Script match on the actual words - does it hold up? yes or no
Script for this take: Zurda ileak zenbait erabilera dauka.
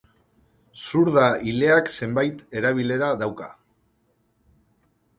yes